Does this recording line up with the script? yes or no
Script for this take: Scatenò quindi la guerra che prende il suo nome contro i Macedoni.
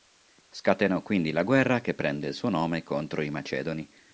yes